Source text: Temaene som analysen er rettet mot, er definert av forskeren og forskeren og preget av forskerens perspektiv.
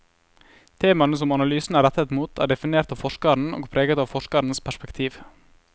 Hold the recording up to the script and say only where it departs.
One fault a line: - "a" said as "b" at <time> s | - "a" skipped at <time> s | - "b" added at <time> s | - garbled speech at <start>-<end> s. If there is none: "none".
- "forskeren og" skipped at 3.7 s